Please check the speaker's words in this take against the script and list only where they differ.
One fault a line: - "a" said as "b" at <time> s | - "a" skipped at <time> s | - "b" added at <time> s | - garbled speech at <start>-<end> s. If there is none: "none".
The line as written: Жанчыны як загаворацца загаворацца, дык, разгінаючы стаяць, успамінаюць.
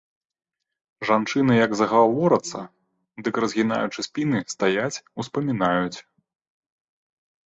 - "загаворацца" skipped at 2.6 s
- "спіны" added at 4.1 s